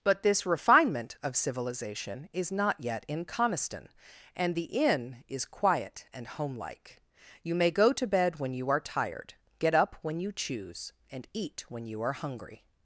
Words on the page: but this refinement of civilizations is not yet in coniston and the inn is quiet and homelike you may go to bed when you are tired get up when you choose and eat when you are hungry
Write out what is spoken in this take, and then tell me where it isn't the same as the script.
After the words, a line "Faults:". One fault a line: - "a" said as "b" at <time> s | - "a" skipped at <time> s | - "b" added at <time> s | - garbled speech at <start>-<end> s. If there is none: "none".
but this refinement of civilization is not yet in coniston and the inn is quiet and homelike you may go to bed when you are tired get up when you choose and eat when you are hungry
Faults:
- "civilizations" said as "civilization" at 1.4 s